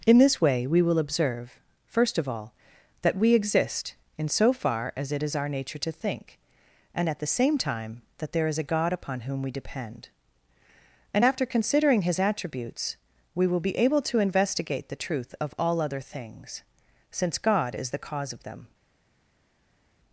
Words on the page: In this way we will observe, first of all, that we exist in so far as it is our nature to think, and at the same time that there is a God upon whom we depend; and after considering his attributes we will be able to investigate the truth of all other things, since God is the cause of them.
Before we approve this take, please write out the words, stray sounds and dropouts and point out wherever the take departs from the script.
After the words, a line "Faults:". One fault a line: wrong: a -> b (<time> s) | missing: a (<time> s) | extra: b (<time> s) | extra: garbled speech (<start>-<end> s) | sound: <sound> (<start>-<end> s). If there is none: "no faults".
In this way we will observe, first of all, that we exist in so far as it is our nature to think, and at the same time that there is a God upon whom we depend; and after considering his attributes we will be able to investigate the truth of all other things, since God is the cause of them.
Faults:
no faults